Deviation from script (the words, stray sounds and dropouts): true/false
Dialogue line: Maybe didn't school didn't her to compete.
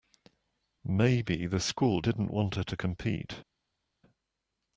true